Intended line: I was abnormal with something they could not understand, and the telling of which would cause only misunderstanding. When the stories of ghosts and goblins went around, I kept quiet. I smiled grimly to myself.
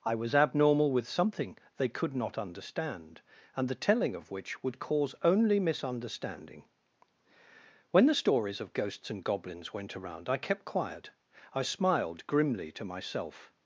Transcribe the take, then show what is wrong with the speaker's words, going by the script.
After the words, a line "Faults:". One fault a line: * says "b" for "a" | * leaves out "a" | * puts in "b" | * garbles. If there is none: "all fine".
I was abnormal with something they could not understand, and the telling of which would cause only misunderstanding. When the stories of ghosts and goblins went around, I kept quiet. I smiled grimly to myself.
Faults:
all fine